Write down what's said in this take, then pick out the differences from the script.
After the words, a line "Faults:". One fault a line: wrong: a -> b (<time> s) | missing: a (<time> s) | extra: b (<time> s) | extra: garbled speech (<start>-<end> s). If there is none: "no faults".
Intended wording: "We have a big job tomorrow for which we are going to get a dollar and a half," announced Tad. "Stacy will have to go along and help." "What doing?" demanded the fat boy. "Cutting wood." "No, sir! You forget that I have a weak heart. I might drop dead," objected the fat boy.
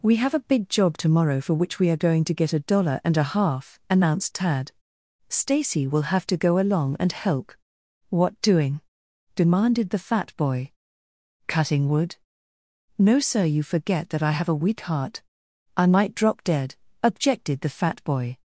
"We have a big job tomorrow for which we are going to get a dollar and a half," announced Tad. "Stacy will have to go along and help." "What doing?" demanded the fat boy. "Cutting wood." "No, sir! You forget that I have a weak heart. I might drop dead," objected the fat boy.
Faults:
no faults